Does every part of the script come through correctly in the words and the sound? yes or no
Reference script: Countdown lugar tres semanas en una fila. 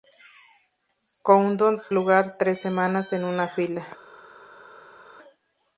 yes